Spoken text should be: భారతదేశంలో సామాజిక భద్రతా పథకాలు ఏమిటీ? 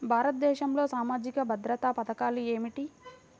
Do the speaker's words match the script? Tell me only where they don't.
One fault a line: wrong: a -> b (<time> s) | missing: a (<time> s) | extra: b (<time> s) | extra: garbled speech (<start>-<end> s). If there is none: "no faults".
no faults